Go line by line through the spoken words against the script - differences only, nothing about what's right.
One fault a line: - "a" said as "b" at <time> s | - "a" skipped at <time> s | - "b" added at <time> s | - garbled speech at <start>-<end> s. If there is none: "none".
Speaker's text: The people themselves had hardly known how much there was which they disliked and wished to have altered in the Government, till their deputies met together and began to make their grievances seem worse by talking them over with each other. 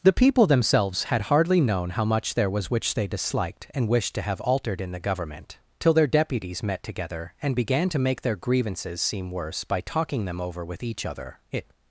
- "It" added at 11.5 s